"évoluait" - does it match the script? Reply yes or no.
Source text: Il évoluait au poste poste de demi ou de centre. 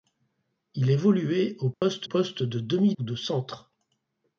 yes